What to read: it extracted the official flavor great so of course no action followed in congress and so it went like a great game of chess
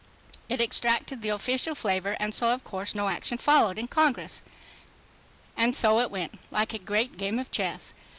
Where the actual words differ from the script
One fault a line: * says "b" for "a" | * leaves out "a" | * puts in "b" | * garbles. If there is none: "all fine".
* says "and" for "great"